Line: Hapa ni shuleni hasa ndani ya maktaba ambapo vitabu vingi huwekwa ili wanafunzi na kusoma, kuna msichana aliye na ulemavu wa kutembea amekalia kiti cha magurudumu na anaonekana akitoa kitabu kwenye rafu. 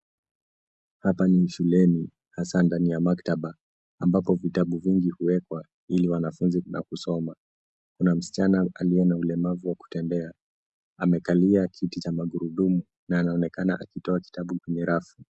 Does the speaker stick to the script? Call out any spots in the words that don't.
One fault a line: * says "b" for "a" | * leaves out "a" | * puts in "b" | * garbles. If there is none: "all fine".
all fine